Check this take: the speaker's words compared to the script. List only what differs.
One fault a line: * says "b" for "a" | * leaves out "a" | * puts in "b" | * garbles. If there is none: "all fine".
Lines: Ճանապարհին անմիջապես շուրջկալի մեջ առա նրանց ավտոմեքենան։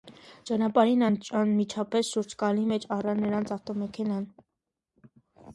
all fine